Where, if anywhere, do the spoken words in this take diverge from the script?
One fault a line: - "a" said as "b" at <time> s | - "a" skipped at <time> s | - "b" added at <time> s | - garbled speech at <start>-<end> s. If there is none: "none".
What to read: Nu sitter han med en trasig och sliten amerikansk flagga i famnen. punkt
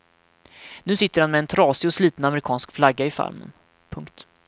none